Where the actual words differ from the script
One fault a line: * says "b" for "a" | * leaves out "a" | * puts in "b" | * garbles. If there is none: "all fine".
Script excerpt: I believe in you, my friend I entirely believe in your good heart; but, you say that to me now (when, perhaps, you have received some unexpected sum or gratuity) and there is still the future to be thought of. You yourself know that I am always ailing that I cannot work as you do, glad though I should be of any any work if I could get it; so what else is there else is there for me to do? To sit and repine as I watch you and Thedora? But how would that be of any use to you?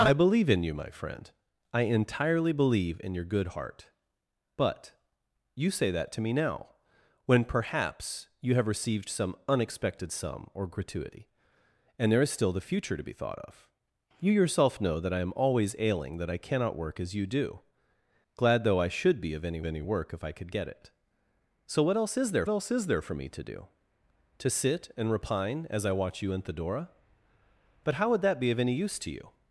all fine